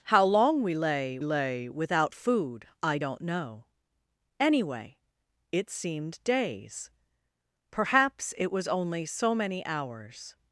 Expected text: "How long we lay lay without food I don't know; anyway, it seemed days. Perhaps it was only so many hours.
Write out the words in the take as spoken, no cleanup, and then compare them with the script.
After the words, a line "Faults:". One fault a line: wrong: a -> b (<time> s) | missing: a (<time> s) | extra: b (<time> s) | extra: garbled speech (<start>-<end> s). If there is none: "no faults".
"How long we lay lay without food I don't know; anyway, it seemed days. Perhaps it was only so many hours.
Faults:
no faults